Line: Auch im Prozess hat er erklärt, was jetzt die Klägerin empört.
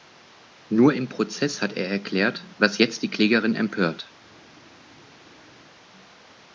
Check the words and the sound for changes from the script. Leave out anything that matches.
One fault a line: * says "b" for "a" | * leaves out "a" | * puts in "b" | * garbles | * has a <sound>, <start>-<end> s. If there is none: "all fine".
* says "Nur" for "Auch"